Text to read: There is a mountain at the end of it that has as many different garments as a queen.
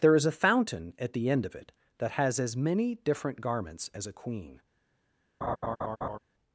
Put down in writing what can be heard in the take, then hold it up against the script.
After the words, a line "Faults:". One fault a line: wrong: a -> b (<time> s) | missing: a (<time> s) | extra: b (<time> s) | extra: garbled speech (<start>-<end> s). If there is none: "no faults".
There is a fountain at the end of it that has as many different garments as a queen.
Faults:
wrong: mountain -> fountain (0.3 s)